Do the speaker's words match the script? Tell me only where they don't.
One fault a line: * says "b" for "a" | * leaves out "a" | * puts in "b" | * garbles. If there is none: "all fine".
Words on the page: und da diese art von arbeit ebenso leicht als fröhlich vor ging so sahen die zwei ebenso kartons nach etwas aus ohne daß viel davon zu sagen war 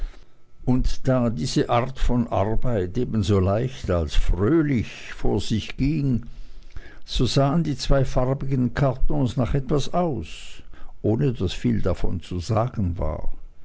* puts in "sich"
* says "farbigen" for "ebenso"